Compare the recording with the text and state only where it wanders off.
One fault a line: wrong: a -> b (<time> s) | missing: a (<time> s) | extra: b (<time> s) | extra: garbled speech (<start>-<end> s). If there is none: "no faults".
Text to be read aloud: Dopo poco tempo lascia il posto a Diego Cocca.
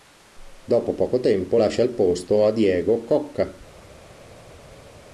no faults